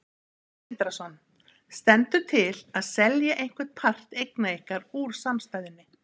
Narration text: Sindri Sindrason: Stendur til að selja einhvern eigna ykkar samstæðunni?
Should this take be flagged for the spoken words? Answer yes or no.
yes